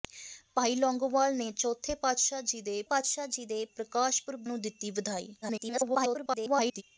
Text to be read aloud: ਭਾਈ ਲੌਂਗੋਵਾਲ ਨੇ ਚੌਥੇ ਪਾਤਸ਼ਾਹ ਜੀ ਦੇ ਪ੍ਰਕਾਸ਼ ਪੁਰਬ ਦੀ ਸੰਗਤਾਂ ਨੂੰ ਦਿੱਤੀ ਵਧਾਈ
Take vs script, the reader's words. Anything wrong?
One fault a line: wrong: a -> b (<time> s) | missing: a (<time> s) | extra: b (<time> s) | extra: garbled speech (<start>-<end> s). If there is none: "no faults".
extra: ਪਾਤਸ਼ਾਹ ਜੀ ਦੇ (2.8 s)
missing: ਦੀ ਸੰਗਤਾਂ (4.4 s)
extra: garbled speech (5.4-6.8 s)